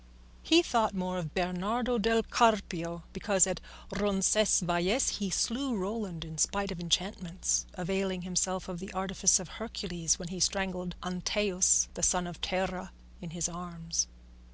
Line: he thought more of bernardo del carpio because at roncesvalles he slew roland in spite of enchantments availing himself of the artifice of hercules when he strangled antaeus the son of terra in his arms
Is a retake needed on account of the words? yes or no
no